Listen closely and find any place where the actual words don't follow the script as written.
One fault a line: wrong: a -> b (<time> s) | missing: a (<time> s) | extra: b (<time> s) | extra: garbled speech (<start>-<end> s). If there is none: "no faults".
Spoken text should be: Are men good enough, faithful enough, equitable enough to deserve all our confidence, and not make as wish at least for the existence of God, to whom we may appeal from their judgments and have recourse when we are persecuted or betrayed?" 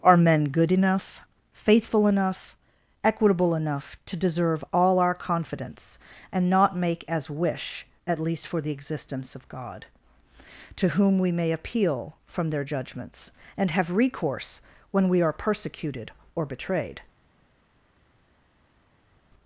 no faults